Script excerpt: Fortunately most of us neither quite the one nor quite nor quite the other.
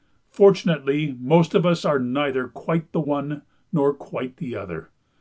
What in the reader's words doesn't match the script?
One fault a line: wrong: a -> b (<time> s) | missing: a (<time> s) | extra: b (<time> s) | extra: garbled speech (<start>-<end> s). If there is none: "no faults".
extra: are (1.8 s)
missing: nor quite (4.4 s)